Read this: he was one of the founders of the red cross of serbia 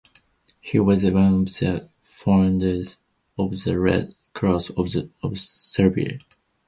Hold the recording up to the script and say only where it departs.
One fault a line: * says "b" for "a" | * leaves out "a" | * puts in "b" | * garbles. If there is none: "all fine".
all fine